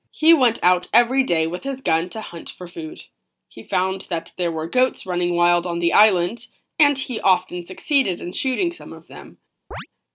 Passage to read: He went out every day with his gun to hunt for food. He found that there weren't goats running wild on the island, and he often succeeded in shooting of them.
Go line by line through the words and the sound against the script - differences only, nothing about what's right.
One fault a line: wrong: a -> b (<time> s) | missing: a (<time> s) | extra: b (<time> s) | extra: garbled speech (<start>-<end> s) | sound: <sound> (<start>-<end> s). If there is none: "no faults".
wrong: weren't -> were (4.5 s)
extra: some (8.7 s)
sound: chirp (9.7-9.9 s)